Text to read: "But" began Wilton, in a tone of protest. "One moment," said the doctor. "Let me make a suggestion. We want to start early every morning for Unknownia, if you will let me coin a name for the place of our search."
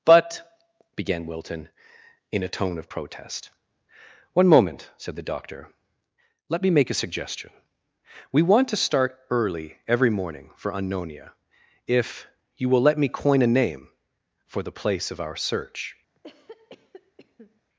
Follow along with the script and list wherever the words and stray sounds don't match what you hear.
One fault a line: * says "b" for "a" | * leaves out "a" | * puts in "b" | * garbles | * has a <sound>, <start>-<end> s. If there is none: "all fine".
* has a cough, 16.1-17.6 s